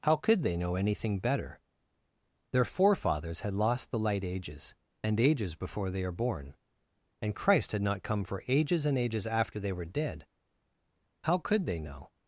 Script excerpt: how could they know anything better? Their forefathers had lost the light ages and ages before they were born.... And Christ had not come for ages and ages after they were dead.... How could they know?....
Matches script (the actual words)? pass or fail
fail